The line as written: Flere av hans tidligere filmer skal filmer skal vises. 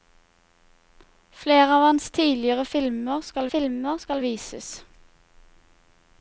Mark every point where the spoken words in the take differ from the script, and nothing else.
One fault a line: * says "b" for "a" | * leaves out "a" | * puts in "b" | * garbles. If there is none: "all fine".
all fine